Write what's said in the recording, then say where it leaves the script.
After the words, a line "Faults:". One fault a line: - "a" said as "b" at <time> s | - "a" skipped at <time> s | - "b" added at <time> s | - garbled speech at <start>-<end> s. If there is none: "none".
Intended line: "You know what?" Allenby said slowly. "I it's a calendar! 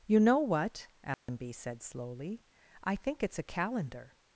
"You know what?" Allenby said slowly. "I think it's a calendar!
Faults:
- "think" added at 3.0 s